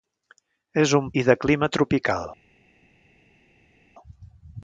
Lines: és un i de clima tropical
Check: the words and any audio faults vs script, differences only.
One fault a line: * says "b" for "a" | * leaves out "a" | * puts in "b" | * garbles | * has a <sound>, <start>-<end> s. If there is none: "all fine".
all fine